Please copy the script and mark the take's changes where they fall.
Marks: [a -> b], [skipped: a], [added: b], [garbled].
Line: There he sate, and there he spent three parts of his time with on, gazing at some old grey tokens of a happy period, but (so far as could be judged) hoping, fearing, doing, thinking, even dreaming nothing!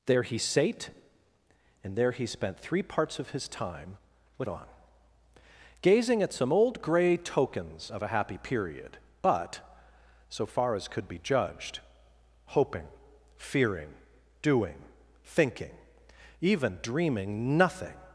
There he sate, and there he spent three parts of his time with on, gazing at some old grey tokens of a happy period, but (so far as could be judged) hoping, fearing, doing, thinking, even dreaming nothing!